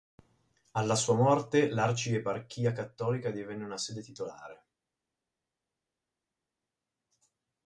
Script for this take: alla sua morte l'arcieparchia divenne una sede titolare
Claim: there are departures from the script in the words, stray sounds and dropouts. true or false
true